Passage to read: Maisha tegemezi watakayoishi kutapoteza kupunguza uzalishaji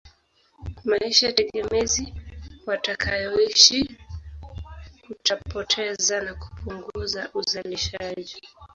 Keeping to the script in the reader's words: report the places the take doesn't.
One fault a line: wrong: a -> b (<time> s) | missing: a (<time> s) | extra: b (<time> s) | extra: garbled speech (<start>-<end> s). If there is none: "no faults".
extra: na (6.2 s)